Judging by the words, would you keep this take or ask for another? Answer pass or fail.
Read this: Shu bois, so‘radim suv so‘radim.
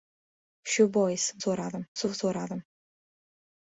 pass